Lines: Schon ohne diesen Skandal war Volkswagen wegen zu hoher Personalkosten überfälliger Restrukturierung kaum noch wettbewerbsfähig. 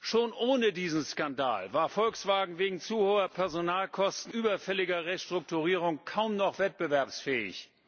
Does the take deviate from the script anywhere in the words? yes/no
no